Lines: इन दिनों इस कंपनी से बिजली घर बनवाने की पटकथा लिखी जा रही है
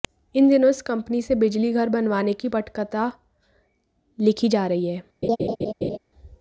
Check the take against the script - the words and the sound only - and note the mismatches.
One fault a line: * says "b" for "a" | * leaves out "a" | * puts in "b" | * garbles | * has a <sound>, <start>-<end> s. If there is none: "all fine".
* has a laugh, 5.2-6.0 s